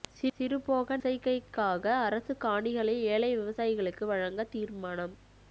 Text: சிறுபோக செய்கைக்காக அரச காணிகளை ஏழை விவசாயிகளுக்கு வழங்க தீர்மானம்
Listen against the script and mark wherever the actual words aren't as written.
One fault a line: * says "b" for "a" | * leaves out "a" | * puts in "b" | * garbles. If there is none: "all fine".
all fine